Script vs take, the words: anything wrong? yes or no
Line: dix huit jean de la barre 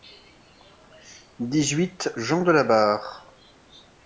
no